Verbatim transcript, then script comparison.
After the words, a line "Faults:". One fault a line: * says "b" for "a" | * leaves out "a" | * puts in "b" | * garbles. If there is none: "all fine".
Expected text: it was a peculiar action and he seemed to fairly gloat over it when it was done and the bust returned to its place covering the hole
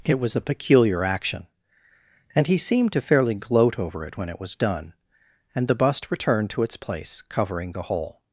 it was a peculiar action and he seemed to fairly gloat over it when it was done and the bust returned to its place covering the hole
Faults:
all fine